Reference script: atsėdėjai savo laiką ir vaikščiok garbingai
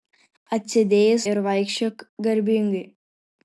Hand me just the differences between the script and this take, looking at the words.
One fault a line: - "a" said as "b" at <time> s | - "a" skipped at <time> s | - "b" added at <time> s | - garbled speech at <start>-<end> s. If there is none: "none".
- "savo laiką" skipped at 1.2 s